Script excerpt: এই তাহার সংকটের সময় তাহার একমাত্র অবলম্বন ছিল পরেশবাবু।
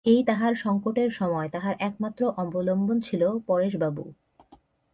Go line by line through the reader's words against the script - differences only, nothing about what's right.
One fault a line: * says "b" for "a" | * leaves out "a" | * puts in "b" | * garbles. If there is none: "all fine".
all fine